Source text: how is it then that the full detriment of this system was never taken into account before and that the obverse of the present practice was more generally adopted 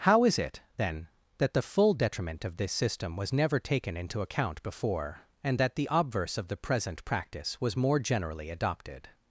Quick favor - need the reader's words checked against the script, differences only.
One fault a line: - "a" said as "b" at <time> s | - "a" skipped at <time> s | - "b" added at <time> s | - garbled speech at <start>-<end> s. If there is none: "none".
none